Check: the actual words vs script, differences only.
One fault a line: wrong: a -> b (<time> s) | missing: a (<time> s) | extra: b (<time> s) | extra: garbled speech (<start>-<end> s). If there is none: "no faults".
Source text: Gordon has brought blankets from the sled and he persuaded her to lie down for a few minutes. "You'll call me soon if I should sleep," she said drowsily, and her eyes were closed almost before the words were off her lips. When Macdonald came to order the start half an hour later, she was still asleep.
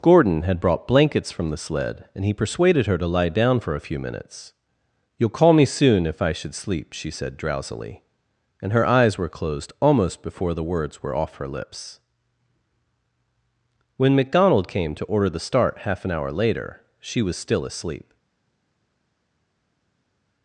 wrong: has -> had (0.4 s)